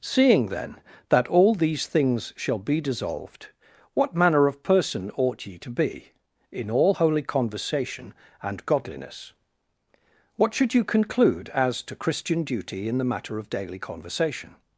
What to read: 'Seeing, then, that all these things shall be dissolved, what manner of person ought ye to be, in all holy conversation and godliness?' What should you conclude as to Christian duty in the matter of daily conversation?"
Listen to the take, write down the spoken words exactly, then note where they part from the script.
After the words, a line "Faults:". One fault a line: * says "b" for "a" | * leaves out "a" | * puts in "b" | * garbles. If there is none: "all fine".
'Seeing, then, that all these things shall be dissolved, what manner of person ought ye to be, in all holy conversation and godliness?' What should you conclude as to Christian duty in the matter of daily conversation?"
Faults:
all fine